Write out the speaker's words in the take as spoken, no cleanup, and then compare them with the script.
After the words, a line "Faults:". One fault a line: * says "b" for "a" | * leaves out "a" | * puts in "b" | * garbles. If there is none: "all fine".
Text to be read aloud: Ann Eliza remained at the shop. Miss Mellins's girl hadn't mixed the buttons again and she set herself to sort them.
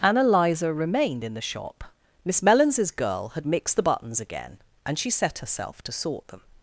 Ann Eliza remained in the shop. Miss Mellins's girl had mixed the buttons again and she set herself to sort them.
Faults:
* says "in" for "at"
* says "had" for "hadn't"